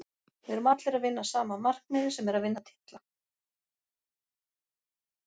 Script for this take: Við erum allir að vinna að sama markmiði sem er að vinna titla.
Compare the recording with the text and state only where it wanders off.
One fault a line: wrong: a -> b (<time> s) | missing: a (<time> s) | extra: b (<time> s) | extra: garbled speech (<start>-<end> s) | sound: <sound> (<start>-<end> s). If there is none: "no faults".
no faults